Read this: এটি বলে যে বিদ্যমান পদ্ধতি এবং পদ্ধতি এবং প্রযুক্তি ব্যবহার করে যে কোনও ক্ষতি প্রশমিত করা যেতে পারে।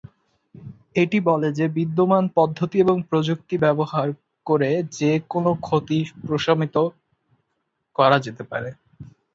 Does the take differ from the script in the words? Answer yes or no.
yes